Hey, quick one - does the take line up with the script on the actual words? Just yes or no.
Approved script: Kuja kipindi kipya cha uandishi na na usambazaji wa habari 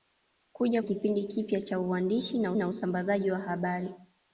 yes